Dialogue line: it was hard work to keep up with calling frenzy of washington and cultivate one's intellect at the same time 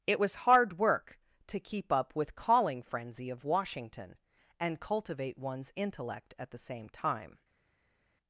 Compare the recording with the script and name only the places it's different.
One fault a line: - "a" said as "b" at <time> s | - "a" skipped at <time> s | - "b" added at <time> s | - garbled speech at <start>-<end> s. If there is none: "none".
none